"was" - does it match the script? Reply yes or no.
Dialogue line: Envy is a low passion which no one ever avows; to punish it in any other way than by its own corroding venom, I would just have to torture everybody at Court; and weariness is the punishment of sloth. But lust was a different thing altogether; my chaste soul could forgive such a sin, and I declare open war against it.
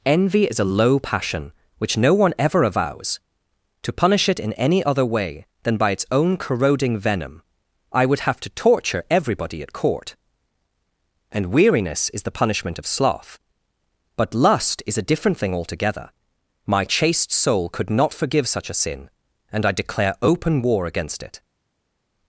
no